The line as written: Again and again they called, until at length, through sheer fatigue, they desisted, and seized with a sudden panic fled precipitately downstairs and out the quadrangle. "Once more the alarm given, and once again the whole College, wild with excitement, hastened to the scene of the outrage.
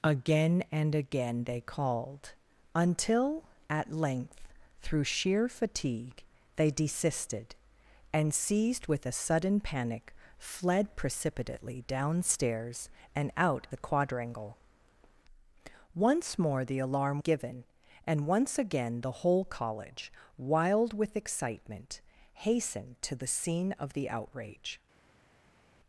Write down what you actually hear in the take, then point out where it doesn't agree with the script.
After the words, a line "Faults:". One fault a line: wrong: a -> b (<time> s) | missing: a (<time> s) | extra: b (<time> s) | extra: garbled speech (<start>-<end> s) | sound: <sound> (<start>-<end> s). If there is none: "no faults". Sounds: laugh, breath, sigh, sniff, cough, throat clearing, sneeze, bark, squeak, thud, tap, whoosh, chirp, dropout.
Again and again they called, until at length, through sheer fatigue, they desisted, and seized with a sudden panic fled precipitately downstairs and out the quadrangle. "Once more the alarm given, and once again the whole College, wild with excitement, hastened to the scene of the outrage.
Faults:
no faults